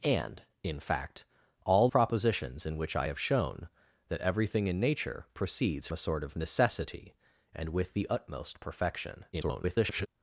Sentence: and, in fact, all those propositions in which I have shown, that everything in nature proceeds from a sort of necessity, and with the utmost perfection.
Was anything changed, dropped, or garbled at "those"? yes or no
yes